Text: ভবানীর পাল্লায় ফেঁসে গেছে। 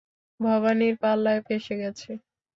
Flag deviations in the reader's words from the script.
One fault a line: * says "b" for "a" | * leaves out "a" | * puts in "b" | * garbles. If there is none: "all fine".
all fine